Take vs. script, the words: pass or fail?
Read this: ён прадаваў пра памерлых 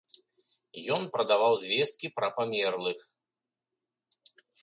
fail